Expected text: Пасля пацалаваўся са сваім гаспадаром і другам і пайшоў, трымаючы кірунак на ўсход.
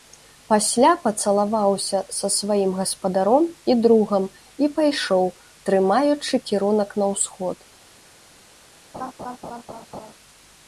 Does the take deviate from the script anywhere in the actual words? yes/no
no